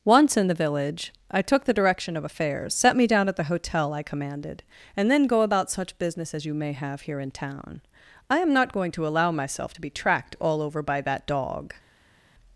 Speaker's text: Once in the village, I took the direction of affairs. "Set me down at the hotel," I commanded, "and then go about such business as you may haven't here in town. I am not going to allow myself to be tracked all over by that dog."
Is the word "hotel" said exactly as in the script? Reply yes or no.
yes